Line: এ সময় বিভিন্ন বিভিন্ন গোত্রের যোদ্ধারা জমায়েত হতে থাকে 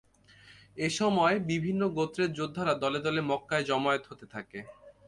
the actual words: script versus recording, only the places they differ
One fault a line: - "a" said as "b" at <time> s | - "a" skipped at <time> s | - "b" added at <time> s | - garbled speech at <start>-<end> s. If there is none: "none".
- "বিভিন্ন" skipped at 1.8 s
- "দলে দলে মক্কায়" added at 2.8 s